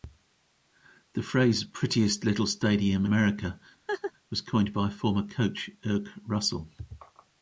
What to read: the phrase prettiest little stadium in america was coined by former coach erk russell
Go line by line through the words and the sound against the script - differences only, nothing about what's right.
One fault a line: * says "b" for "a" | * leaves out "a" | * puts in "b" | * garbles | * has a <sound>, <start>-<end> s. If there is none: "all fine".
* leaves out "in"
* has a laugh, 3.9-4.1 s